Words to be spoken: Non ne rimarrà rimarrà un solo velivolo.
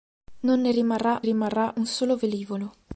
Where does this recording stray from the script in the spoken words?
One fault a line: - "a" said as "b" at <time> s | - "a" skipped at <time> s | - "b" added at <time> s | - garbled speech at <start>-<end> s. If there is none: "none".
none